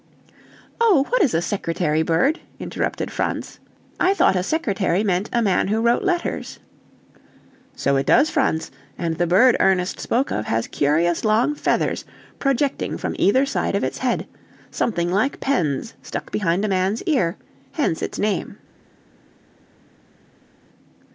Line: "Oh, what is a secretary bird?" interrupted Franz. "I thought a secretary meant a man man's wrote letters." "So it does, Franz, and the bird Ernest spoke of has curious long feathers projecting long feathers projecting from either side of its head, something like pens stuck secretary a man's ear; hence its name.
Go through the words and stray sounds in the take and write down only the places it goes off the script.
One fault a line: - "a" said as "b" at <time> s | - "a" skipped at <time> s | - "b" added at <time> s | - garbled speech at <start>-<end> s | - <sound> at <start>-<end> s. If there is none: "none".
- "man's" said as "who" at 5.7 s
- "long feathers projecting" skipped at 13.0 s
- "secretary" said as "behind" at 16.3 s